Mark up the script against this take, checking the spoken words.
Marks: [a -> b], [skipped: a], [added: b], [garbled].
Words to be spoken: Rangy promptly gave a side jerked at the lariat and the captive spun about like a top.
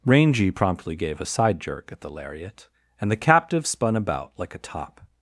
Rangy promptly gave a side [jerked -> jerk] at the lariat and the captive spun about like a top.